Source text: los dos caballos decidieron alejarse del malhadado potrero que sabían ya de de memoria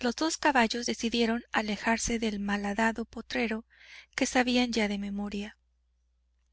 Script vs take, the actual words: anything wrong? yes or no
yes